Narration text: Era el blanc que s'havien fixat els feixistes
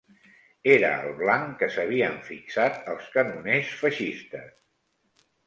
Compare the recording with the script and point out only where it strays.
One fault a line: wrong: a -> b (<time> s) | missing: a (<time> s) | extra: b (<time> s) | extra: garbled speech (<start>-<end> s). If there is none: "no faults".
extra: canoners (3.2 s)